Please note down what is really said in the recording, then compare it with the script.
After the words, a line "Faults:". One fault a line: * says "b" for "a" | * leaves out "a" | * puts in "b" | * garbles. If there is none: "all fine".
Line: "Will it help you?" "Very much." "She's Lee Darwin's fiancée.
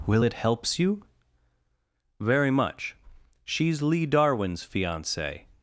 "Will it helps you?" "Very much." "She's Lee Darwin's fiancée.
Faults:
* says "helps" for "help"